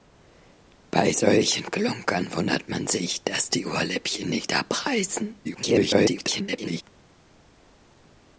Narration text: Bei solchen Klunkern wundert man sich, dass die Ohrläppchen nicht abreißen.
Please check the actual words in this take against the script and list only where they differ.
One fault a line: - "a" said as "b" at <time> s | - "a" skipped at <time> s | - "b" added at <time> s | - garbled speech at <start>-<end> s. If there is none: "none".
- garbled speech at 5.4-6.8 s